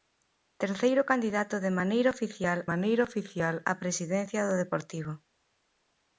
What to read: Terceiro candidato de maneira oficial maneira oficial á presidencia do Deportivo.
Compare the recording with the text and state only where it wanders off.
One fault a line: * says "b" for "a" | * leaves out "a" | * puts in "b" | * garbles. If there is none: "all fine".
all fine